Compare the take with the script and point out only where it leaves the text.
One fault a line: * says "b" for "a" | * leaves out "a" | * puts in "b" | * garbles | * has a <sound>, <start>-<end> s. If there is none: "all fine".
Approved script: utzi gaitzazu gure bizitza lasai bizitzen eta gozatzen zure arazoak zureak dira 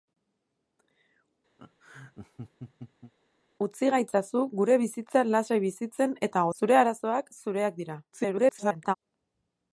* has a laugh, 1.6-3.1 s
* leaves out "gozatzen"
* garbles